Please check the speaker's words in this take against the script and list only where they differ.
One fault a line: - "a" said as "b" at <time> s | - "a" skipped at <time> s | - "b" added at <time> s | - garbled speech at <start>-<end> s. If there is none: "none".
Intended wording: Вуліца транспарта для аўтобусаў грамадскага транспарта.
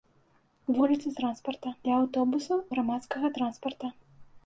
none